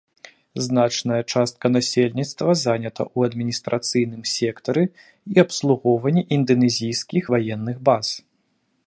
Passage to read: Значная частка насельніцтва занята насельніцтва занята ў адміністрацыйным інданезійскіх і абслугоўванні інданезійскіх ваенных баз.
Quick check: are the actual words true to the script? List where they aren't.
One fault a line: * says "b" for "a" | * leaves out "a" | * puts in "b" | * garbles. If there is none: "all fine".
* leaves out "насельніцтва занята"
* says "сектары" for "інданезійскіх"